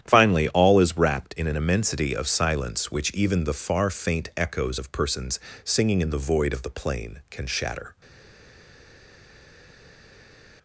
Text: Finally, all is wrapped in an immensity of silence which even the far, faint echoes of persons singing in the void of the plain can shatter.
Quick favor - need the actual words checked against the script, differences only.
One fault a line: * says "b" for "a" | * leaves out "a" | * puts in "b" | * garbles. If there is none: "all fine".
all fine